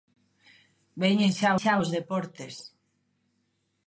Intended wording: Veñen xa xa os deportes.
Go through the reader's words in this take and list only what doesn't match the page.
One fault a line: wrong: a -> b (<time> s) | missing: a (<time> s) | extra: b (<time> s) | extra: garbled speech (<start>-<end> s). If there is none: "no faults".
no faults